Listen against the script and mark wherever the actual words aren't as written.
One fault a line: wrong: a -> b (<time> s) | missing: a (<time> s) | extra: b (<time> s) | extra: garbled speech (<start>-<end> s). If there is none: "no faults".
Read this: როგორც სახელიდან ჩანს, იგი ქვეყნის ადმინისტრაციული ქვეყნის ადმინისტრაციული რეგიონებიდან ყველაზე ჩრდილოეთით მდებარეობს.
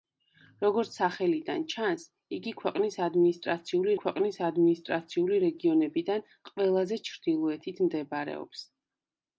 no faults